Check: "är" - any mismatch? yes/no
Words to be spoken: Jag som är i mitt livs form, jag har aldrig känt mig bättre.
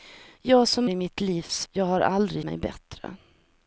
yes